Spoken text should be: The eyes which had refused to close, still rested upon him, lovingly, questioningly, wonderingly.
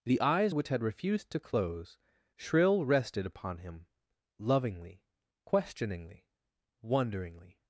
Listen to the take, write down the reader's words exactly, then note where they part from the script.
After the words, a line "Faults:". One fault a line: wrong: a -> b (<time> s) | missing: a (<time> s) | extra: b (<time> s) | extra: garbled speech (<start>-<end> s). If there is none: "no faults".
The eyes which had refused to close, shrill rested upon him, lovingly, questioningly, wonderingly.
Faults:
wrong: still -> shrill (2.3 s)